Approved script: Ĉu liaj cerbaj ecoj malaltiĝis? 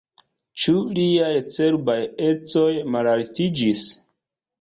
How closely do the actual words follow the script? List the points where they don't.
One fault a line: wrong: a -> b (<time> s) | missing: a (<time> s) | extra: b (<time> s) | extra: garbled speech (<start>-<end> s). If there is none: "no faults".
no faults